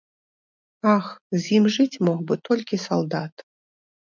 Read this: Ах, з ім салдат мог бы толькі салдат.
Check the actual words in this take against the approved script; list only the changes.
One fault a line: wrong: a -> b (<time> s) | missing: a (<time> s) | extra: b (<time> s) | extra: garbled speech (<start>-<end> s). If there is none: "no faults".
wrong: салдат -> жыць (1.8 s)